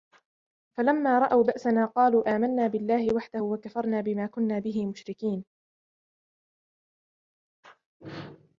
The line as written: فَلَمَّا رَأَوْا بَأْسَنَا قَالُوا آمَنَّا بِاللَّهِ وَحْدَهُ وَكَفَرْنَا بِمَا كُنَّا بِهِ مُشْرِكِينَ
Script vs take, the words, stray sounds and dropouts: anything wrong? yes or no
no